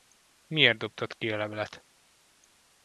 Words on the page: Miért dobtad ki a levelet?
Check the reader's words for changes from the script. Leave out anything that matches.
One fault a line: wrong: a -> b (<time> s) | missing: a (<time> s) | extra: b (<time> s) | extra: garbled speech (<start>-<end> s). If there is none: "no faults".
no faults